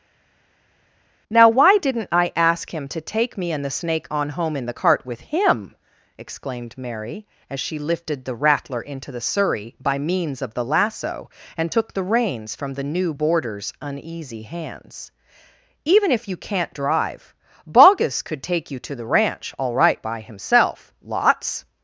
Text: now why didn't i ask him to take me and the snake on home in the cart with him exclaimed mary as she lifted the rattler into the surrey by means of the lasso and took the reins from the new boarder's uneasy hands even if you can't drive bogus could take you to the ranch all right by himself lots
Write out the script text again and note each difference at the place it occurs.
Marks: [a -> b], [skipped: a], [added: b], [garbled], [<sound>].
now why didn't i ask him to take me and the snake on home in the cart with him exclaimed mary as she lifted the rattler into the surrey by means of the lasso and took the reins from the new boarder's uneasy hands even if you can't drive bogus could take you to the ranch all right by himself lots